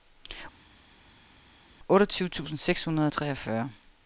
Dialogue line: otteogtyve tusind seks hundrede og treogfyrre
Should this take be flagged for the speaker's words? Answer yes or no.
no